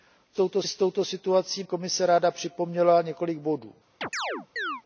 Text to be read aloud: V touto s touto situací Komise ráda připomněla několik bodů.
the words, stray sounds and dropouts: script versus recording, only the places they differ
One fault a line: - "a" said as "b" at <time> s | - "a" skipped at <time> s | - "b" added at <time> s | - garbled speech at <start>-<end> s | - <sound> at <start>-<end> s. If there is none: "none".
- chirp at 4.0-4.8 s